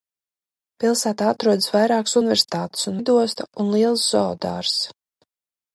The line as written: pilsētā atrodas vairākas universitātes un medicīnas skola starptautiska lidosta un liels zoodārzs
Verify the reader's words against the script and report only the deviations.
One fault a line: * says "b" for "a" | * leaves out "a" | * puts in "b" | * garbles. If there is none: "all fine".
* leaves out "medicīnas skola starptautiska"